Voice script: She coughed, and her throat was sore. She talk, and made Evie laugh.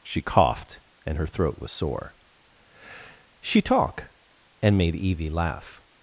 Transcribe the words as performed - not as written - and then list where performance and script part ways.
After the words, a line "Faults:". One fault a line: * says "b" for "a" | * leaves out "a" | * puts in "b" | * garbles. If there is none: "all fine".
She coughed, and her throat was sore. She talk, and made Evie laugh.
Faults:
all fine